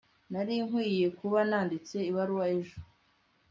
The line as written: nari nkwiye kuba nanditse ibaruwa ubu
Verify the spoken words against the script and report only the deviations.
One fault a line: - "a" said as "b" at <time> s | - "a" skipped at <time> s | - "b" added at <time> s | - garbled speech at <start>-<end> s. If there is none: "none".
- "ubu" said as "ejo" at 2.6 s